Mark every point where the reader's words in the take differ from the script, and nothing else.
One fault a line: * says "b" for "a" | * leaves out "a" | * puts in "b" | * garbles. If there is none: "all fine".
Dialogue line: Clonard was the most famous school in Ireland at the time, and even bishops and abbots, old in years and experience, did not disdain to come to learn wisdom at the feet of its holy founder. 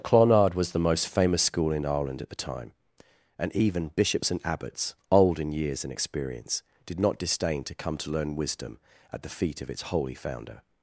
all fine